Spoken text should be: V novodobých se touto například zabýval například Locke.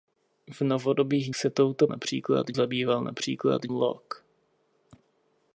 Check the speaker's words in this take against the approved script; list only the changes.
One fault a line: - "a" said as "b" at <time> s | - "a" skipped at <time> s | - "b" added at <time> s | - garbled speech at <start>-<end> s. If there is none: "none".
none